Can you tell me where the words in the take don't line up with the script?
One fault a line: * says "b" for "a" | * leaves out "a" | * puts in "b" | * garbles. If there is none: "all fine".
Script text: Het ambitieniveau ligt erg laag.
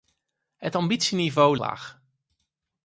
* leaves out "ligt erg"